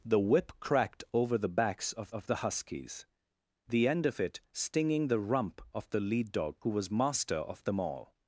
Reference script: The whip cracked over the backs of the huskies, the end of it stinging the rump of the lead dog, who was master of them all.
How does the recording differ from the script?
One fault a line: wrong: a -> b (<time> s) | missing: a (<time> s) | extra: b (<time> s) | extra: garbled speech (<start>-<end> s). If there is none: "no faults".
extra: of (2.1 s)